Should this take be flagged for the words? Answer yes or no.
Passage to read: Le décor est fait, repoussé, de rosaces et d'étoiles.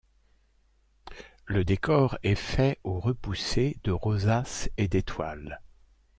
yes